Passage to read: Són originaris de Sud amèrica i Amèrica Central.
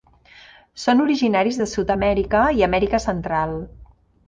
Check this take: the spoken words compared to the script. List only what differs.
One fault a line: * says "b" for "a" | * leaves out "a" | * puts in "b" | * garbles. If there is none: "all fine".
all fine